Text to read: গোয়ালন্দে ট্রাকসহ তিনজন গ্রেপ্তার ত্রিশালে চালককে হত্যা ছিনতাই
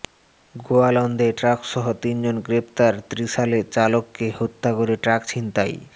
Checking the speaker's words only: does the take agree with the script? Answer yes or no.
no